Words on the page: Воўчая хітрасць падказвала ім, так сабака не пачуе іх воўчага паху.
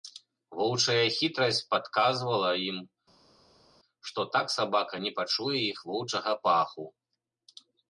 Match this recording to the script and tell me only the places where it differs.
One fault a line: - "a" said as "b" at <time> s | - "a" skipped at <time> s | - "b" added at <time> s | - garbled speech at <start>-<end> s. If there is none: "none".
- "што" added at 4.1 s